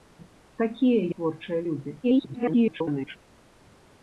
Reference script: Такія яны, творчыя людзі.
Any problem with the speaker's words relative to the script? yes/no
yes